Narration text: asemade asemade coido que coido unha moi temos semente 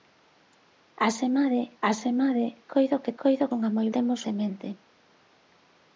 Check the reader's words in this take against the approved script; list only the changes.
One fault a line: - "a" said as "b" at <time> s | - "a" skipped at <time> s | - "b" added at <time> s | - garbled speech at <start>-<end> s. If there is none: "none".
none